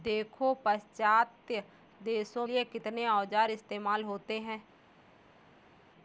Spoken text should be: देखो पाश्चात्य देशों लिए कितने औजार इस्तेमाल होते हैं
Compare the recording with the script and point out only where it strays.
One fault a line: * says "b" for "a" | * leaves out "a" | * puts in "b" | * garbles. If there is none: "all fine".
all fine